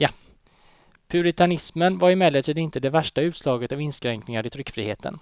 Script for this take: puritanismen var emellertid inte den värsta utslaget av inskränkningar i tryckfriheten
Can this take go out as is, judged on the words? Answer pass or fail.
fail